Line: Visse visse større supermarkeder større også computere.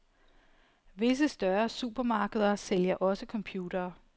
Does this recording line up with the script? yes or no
no